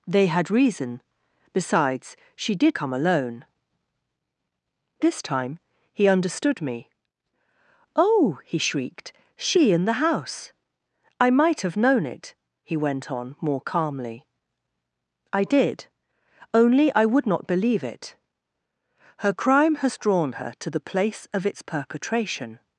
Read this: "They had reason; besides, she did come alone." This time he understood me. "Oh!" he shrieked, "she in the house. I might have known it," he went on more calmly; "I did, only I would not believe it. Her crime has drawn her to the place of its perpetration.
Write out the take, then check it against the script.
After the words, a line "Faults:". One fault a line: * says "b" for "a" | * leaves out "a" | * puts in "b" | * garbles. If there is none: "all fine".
"They had reason; besides, she did come alone." This time he understood me. "Oh!" he shrieked, "she in the house. I might have known it," he went on more calmly; "I did, only I would not believe it. Her crime has drawn her to the place of its perpetration.
Faults:
all fine